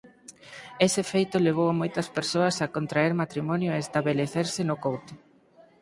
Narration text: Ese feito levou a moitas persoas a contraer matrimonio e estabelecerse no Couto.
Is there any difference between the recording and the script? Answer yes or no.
no